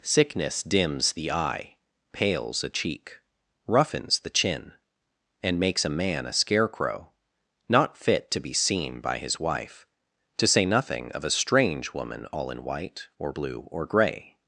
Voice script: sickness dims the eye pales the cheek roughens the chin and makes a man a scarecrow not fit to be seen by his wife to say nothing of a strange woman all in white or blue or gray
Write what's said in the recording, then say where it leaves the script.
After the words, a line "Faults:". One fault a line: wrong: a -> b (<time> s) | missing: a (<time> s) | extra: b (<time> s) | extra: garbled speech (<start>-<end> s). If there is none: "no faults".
sickness dims the eye pales a cheek roughens the chin and makes a man a scarecrow not fit to be seen by his wife to say nothing of a strange woman all in white or blue or gray
Faults:
wrong: the -> a (2.6 s)